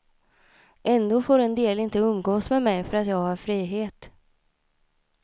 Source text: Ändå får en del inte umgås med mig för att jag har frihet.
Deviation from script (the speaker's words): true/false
false